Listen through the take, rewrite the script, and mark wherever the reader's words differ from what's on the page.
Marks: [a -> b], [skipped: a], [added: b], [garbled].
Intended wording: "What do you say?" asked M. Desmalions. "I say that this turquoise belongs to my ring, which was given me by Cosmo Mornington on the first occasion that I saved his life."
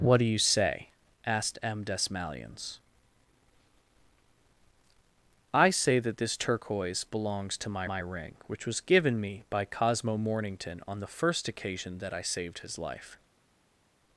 "What do you say?" asked M. Desmalions. "I say that this turquoise belongs to my [added: my] ring, which was given me by Cosmo Mornington on the first occasion that I saved his life."